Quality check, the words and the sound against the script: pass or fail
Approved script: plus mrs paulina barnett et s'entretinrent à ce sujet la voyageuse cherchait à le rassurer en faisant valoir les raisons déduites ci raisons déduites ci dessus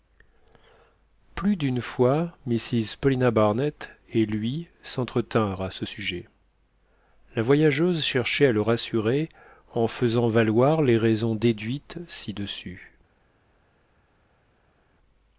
fail